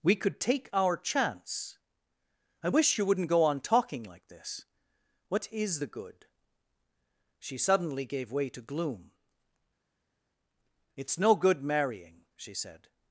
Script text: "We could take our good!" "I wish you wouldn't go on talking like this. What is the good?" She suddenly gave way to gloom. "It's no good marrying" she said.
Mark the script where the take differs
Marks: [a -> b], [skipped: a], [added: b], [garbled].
"We could take our [good!" -> chance] "I wish you wouldn't go on talking like this. What is the good?" She suddenly gave way to gloom. "It's no good marrying" she said.